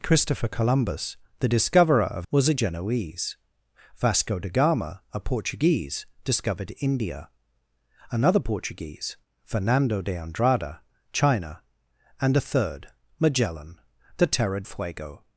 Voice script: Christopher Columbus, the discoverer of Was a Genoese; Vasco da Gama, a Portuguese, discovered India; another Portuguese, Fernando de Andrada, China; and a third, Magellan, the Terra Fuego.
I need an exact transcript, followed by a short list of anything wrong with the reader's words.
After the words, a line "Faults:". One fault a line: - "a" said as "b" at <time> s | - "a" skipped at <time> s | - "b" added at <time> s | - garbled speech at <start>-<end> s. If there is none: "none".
Christopher Columbus, the discoverer of Was a Genoese; Vasco da Gama, a Portuguese, discovered India; another Portuguese, Fernando de Andrada, China; and a third, Magellan, the Terra Fuego.
Faults:
none